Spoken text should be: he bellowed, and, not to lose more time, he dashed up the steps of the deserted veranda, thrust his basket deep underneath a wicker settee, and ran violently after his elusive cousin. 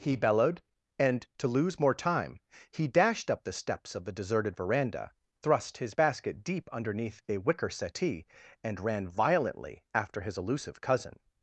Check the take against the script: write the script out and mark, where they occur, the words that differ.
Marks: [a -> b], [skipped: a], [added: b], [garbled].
he bellowed, and, [skipped: not] to lose more time, he dashed up the steps of the deserted veranda, thrust his basket deep underneath a wicker settee, and ran violently after his elusive cousin.